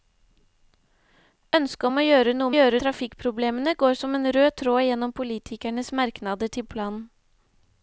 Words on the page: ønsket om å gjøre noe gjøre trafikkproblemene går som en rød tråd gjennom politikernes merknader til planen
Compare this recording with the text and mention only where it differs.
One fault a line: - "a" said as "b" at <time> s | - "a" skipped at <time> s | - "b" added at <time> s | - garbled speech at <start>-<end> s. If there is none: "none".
none